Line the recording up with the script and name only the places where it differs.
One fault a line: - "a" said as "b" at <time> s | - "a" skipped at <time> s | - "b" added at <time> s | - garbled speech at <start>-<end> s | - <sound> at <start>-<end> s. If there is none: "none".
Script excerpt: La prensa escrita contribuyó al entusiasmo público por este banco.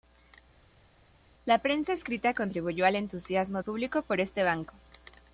none